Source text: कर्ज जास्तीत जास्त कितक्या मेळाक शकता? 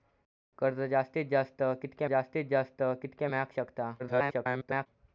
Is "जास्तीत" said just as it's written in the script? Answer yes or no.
yes